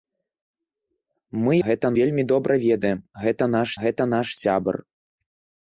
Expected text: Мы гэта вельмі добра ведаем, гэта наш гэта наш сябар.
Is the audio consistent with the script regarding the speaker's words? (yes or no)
yes